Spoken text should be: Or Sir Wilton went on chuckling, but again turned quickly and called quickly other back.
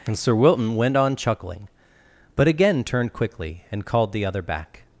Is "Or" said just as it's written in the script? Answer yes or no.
no